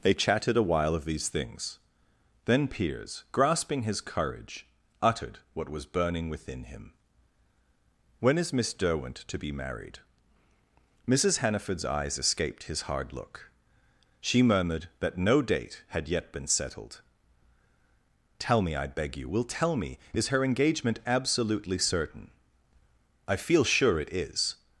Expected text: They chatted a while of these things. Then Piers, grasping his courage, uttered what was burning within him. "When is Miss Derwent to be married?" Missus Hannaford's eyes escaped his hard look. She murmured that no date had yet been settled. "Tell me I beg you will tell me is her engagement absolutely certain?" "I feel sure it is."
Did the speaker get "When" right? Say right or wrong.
right